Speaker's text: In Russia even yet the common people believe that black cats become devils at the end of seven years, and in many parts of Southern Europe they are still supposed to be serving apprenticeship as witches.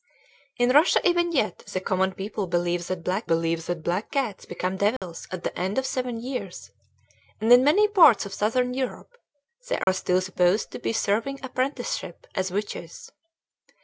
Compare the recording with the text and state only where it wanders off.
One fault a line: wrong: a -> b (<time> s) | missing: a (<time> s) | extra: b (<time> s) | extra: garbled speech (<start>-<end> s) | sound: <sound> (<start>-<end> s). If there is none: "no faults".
extra: believe that black (3.2 s)
sound: dropout (5.0-5.0 s)
sound: dropout (9.8-9.9 s)